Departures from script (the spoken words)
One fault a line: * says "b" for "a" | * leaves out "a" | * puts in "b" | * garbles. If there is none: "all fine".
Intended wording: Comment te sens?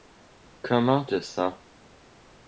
all fine